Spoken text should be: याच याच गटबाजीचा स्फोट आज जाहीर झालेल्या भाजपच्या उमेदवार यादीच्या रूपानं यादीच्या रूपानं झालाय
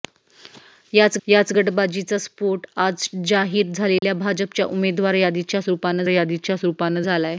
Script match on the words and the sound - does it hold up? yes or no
no